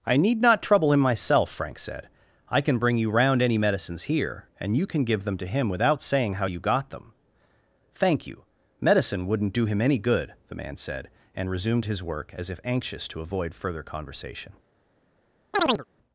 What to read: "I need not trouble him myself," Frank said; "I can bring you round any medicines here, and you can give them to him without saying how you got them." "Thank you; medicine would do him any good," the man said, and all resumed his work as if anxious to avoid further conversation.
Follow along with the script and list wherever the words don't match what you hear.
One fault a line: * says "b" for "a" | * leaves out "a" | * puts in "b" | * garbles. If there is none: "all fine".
* says "wouldn't" for "would"
* leaves out "all"